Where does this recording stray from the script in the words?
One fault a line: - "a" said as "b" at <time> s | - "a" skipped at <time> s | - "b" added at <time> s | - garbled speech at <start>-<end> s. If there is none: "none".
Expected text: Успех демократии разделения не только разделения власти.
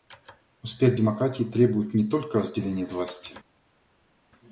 - "разделения" said as "требует" at 1.4 s